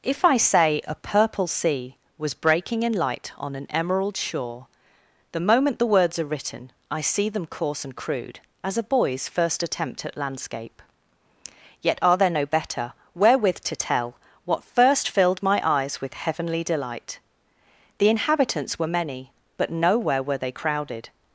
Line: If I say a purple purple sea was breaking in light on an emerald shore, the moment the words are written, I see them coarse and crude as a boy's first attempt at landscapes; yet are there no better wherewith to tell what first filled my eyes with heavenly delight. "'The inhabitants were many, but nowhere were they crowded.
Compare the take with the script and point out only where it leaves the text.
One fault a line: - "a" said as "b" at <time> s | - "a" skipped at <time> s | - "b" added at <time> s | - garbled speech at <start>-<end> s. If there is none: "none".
- "purple" skipped at 1.4 s
- "landscapes" said as "landscape" at 10.1 s